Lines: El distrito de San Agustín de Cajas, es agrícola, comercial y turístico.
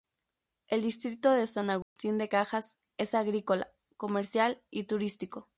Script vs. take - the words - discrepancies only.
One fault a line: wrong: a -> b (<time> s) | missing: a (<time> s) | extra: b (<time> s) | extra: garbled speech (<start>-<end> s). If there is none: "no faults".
no faults